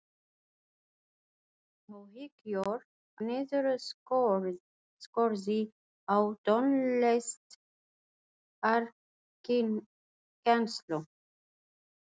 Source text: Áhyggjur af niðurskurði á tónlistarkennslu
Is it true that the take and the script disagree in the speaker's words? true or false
true